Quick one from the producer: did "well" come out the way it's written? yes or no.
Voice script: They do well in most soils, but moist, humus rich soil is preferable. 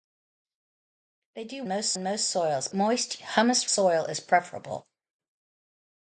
no